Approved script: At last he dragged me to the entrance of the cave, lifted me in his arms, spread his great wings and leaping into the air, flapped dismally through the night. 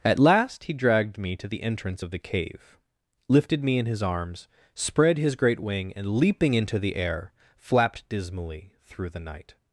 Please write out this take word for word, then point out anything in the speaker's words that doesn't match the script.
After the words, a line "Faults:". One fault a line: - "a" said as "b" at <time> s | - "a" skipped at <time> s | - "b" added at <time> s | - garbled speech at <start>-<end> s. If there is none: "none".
At last he dragged me to the entrance of the cave, lifted me in his arms, spread his great wing and leaping into the air, flapped dismally through the night.
Faults:
- "wings" said as "wing" at 5.6 s